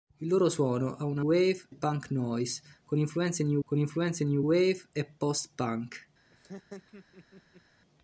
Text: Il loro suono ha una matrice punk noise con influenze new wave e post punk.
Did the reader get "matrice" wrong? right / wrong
wrong